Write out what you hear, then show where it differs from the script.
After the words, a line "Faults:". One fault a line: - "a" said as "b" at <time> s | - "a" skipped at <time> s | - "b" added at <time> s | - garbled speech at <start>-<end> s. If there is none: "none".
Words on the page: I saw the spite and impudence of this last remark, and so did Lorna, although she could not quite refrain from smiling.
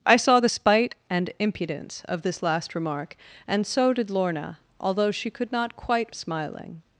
I saw the spite and impudence of this last remark, and so did Lorna, although she could not quite smiling.
Faults:
- "refrain from" skipped at 6.1 s